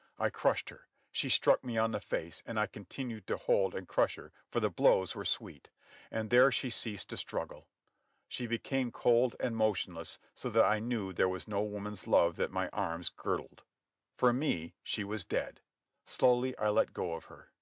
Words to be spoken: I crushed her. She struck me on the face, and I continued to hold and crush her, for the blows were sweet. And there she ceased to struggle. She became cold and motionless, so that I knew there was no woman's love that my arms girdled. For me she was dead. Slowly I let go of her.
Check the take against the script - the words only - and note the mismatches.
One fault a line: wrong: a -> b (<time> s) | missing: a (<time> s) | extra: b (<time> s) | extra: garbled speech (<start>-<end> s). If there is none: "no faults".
no faults